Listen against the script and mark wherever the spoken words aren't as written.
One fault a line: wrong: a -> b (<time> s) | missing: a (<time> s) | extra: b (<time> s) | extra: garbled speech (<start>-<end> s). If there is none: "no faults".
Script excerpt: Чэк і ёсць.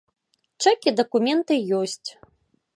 extra: дакументы (1.0 s)